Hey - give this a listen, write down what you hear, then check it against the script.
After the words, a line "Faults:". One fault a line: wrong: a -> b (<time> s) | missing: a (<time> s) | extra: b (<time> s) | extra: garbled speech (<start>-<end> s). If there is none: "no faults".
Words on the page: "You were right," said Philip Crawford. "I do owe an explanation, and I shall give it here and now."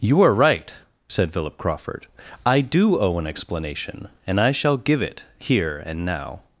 "You are right," said Philip Crawford. "I do owe an explanation, and I shall give it here and now."
Faults:
wrong: were -> are (0.2 s)